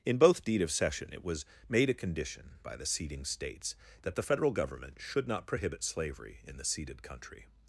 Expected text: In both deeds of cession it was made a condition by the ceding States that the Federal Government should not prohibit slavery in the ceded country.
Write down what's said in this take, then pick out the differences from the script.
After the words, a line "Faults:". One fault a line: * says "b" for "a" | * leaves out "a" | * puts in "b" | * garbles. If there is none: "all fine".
In both deed of cession it was made a condition by the ceding States that the Federal Government should not prohibit slavery in the ceded country.
Faults:
* says "deed" for "deeds"